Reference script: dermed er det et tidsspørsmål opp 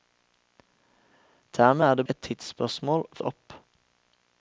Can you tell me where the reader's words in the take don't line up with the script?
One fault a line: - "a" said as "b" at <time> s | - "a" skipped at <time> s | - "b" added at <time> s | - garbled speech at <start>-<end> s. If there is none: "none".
none